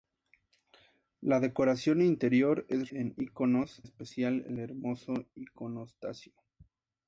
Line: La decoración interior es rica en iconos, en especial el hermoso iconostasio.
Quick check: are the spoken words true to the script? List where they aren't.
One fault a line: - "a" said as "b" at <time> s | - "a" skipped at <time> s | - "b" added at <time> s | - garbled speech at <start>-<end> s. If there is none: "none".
- "rica" skipped at 2.9 s
- "en" skipped at 3.8 s